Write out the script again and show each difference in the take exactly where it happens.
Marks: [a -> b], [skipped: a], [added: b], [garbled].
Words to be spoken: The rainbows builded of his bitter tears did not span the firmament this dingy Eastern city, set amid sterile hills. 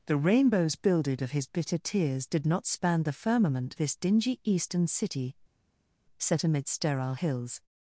The rainbows builded of his bitter tears did not span the firmament this dingy Eastern city, set amid sterile hills.